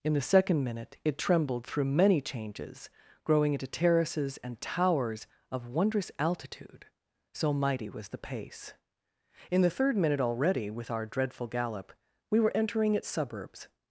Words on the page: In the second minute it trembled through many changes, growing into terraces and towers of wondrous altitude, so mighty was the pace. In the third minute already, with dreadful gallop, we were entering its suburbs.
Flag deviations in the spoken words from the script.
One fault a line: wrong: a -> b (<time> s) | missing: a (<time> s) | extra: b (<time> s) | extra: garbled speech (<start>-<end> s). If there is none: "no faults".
extra: our (10.9 s)